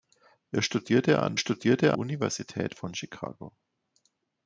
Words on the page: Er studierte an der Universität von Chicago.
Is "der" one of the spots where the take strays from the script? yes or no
yes